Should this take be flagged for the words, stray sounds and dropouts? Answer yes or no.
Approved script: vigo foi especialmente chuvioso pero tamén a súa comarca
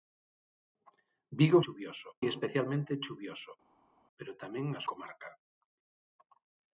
yes